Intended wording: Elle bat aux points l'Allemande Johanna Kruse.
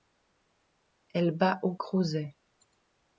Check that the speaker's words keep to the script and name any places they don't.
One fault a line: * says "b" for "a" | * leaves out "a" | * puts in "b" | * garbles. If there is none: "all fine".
* leaves out "points l'Allemande Johanna"